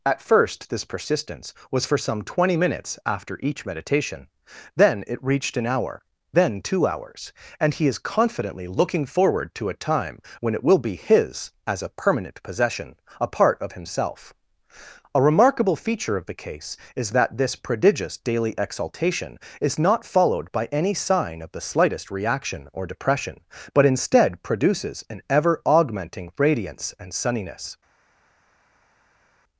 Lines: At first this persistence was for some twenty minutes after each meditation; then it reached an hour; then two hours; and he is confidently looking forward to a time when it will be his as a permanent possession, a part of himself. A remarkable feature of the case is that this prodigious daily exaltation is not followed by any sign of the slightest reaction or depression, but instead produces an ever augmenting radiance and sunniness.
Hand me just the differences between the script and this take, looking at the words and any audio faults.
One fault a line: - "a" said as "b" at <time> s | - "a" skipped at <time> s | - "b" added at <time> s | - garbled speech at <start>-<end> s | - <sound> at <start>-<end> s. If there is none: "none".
none